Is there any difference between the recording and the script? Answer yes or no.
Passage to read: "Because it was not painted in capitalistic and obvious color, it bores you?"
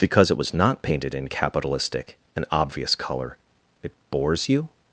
no